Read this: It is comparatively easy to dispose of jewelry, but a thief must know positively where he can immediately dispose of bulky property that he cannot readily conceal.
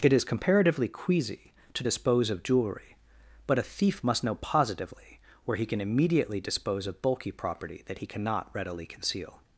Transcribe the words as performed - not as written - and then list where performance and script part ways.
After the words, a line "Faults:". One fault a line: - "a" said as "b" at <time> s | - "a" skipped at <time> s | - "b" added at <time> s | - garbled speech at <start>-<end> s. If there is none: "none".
It is comparatively queasy to dispose of jewelry, but a thief must know positively where he can immediately dispose of bulky property that he cannot readily conceal.
Faults:
- "easy" said as "queasy" at 0.9 s